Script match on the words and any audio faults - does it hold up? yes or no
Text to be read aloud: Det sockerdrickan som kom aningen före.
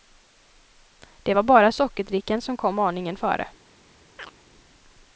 no